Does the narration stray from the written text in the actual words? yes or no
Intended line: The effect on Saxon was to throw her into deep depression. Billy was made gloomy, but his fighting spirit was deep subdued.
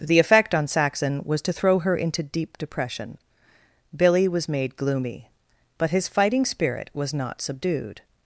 yes